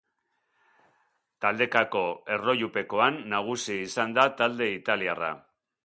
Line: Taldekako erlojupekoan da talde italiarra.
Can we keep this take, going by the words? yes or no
no